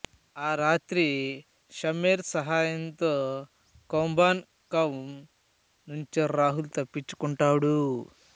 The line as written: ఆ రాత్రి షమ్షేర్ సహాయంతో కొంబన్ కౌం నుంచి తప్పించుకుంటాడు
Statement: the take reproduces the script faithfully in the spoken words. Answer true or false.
false